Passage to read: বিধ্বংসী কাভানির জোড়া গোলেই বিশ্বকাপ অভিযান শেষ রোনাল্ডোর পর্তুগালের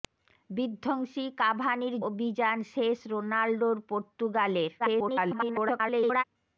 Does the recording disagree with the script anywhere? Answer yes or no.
yes